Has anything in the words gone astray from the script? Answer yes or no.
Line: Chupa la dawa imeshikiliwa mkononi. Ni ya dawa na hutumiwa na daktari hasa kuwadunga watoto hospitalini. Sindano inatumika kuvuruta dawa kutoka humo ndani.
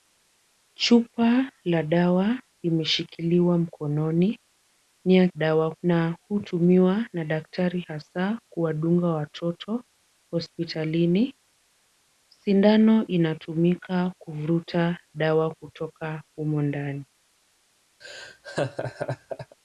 no